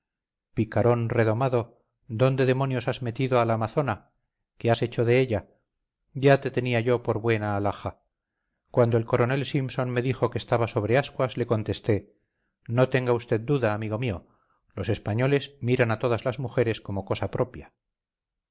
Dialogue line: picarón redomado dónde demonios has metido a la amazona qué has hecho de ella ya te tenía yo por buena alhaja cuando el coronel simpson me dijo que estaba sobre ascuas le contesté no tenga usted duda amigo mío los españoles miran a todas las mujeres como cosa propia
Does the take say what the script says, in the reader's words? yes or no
yes